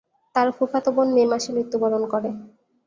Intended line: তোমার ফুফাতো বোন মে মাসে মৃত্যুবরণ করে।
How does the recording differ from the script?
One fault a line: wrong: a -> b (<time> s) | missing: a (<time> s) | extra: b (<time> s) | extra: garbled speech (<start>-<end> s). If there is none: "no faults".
wrong: তোমার -> তার (0.3 s)